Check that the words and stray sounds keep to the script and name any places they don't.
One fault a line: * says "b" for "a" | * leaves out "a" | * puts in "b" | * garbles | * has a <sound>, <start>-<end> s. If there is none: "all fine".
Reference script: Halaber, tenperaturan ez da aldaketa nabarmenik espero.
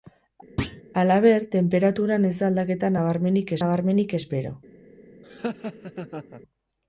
* has a thud, 0.6-0.8 s
* puts in "nabarmenik"
* has a laugh, 5.2-6.4 s